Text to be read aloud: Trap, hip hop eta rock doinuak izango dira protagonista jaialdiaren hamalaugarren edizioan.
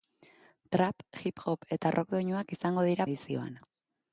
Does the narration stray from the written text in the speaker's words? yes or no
yes